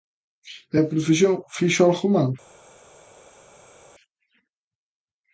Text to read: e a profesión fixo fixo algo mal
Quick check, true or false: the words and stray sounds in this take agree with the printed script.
false